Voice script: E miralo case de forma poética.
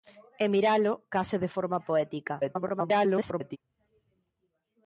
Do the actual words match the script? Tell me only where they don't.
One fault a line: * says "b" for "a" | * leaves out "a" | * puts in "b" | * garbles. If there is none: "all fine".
* garbles